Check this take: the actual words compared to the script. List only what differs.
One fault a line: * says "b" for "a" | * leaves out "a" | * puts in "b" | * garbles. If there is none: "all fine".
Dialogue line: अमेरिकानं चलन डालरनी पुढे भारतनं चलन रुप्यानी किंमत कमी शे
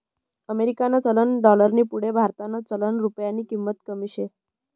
all fine